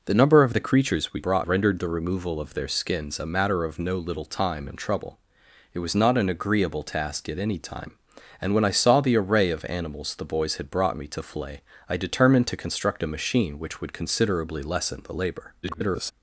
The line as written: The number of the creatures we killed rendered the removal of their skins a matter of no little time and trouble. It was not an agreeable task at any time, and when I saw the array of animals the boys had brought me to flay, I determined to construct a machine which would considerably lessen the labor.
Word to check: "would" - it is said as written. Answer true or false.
true